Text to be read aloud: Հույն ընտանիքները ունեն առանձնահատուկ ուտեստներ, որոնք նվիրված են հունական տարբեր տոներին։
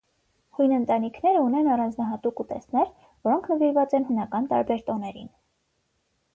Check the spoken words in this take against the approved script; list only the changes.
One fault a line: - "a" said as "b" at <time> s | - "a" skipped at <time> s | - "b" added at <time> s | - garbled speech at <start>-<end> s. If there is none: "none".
none